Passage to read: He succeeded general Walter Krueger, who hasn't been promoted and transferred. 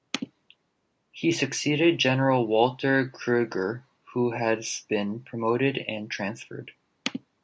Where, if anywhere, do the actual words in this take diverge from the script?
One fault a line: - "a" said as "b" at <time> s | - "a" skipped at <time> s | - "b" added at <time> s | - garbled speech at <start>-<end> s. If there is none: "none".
- "hasn't" said as "has" at 4.3 s